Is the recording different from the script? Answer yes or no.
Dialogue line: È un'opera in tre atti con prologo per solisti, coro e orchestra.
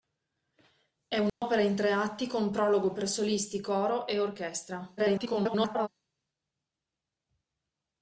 yes